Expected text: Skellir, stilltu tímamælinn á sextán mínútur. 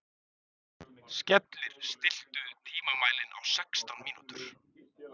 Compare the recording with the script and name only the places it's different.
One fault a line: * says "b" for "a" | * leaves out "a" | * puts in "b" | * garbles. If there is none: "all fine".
all fine